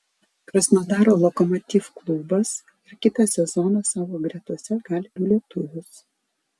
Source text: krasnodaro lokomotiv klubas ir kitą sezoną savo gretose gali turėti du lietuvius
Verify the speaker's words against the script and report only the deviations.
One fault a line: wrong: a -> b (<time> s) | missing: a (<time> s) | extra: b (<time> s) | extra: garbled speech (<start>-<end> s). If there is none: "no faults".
missing: turėti (5.2 s)